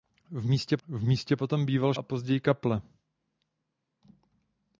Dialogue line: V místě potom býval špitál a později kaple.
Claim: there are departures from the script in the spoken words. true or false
true